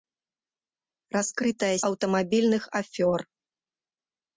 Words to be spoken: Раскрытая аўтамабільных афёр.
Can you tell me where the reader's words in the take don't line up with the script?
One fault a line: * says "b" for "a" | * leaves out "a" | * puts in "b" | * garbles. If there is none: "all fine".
all fine